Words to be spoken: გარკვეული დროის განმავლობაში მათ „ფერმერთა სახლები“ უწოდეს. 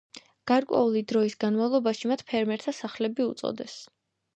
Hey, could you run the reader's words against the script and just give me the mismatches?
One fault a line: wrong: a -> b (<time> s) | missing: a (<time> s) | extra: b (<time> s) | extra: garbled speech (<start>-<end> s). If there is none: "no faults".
no faults